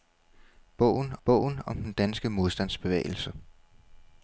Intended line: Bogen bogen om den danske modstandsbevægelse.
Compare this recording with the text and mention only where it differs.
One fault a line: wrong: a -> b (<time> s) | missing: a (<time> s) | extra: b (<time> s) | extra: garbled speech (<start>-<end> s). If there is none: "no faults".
no faults